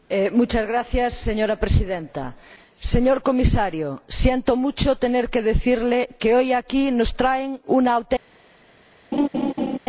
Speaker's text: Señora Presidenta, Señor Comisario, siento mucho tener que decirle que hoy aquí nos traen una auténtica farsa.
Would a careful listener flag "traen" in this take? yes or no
no